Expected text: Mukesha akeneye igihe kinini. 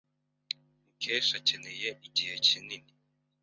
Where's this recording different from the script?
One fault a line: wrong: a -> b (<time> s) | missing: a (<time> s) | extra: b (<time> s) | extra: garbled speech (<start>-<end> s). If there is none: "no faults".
no faults